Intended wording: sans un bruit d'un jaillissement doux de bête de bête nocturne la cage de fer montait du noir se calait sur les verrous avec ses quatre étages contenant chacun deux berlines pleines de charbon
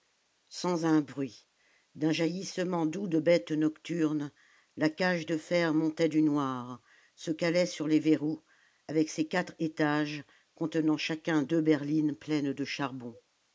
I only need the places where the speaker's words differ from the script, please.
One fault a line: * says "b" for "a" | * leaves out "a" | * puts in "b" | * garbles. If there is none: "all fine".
* leaves out "de bête"